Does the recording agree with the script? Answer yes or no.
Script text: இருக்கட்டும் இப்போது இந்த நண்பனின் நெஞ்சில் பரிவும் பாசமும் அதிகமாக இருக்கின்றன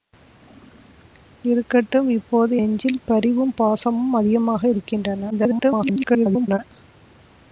no